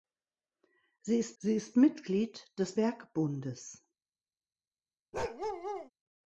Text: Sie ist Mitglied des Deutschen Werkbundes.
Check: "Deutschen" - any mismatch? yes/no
yes